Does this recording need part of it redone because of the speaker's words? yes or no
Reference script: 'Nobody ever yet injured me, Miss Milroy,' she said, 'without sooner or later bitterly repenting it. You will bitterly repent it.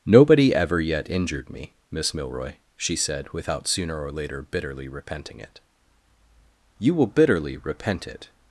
no